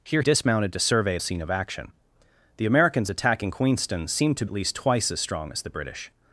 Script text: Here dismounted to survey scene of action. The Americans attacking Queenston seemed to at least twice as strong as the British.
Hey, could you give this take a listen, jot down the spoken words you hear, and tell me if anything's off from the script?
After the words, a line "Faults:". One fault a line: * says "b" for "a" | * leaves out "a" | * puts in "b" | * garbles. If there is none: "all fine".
Here dismounted to survey scene of action. The Americans attacking Queenston seemed to at least twice as strong as the British.
Faults:
all fine